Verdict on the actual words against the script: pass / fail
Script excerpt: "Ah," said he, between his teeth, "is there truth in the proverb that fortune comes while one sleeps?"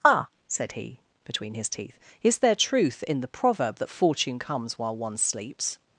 pass